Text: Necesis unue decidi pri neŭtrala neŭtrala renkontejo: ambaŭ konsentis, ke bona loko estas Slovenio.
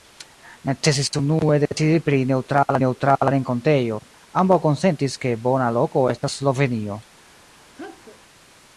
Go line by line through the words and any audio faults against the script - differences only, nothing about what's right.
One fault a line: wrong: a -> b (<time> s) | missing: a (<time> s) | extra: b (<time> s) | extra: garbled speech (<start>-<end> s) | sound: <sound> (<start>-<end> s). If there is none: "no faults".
sound: sneeze (7.7-8.2 s)